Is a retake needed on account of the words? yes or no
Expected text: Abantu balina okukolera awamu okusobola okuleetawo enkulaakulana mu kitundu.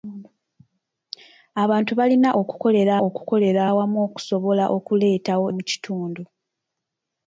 yes